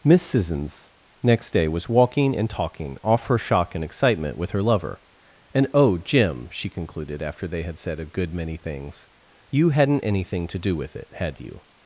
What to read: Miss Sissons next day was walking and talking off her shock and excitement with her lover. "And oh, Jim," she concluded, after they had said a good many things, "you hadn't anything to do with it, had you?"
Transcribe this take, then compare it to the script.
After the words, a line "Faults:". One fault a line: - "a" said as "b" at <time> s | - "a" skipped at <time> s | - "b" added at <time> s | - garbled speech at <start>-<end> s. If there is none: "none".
Miss Sissons next day was walking and talking off her shock and excitement with her lover. "And oh, Jim," she concluded, after they had said a good many things, "you hadn't anything to do with it, had you?"
Faults:
none